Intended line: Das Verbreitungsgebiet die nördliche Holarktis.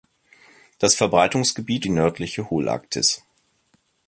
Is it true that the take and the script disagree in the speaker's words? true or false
false